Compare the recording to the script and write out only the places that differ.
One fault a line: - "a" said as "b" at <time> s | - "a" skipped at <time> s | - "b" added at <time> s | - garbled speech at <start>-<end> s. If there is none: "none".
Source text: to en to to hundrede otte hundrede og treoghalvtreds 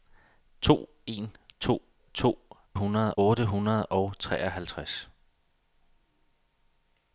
none